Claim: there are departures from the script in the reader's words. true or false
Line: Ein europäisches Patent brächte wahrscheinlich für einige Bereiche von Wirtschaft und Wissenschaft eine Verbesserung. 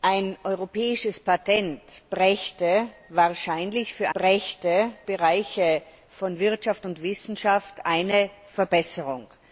true